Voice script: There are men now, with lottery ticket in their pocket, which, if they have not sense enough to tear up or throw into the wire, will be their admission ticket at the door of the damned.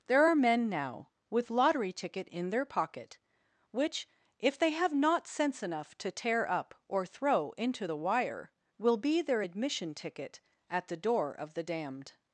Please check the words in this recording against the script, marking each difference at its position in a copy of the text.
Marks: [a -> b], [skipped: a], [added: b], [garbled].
There are men now, with lottery ticket in their pocket, which, if they have not sense enough to tear up or throw into the wire, will be their admission ticket at the door of the damned.